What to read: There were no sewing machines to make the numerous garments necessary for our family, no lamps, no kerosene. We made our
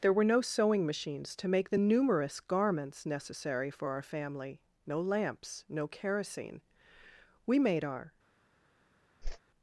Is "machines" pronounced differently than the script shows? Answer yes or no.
no